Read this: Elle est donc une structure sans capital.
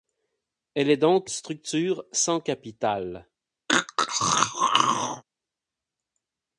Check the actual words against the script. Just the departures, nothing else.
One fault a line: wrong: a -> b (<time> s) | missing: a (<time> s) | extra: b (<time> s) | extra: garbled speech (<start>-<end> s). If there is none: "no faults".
missing: une (1.3 s)